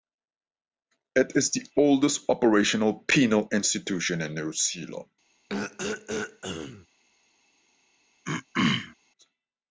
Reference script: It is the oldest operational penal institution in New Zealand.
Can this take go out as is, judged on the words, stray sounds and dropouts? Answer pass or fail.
fail